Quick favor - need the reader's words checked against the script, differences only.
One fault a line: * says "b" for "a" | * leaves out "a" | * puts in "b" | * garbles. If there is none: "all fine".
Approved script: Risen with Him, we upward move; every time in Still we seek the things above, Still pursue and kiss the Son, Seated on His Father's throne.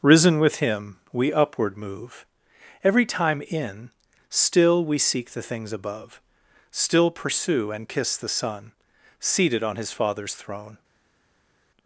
all fine